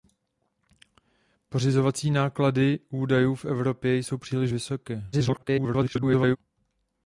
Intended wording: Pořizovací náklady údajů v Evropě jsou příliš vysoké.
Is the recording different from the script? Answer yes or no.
yes